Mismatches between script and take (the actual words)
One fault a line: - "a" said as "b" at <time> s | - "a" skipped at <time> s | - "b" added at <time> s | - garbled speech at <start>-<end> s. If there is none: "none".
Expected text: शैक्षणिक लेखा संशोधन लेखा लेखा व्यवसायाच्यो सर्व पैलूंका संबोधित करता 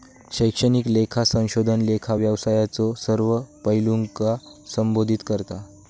- "लेखा" skipped at 2.1 s